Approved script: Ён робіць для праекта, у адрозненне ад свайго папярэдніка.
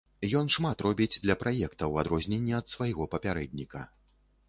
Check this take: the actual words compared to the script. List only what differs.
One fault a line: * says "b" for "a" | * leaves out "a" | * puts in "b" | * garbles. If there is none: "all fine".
* puts in "шмат"